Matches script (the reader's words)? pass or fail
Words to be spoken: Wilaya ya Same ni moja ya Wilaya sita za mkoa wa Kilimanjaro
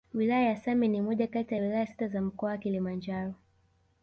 fail